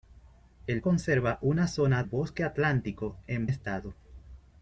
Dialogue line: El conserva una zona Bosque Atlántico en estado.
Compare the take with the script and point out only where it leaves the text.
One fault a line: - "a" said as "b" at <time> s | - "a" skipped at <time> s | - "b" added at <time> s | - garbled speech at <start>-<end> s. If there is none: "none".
none